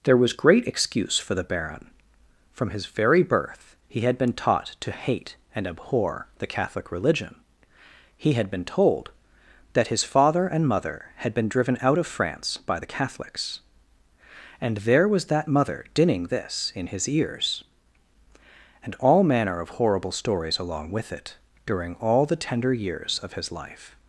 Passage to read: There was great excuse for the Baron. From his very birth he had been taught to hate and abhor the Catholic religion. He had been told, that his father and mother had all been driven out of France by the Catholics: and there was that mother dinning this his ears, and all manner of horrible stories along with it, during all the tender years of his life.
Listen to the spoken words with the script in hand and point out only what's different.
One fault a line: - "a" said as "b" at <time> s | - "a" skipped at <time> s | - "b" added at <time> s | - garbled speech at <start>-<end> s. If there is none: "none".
- "all" skipped at 11.3 s
- "in" added at 16.7 s